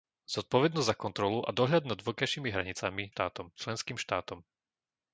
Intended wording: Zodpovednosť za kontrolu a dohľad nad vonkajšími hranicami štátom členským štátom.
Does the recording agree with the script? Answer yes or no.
yes